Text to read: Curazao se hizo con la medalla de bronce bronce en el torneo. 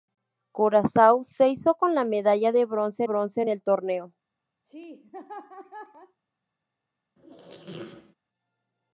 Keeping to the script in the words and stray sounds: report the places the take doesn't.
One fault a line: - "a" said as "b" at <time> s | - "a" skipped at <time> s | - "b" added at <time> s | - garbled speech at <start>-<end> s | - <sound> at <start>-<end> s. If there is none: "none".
- laugh at 4.6-6.2 s
- squeak at 7.2-8.2 s